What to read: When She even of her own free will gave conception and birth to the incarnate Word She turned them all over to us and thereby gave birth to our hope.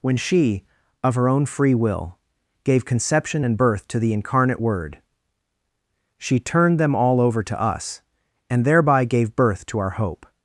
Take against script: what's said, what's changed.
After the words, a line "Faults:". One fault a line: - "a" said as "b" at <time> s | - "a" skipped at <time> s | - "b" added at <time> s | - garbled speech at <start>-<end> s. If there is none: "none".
When She of her own free will gave conception and birth to the incarnate Word She turned them all over to us and thereby gave birth to our hope.
Faults:
- "even" skipped at 0.7 s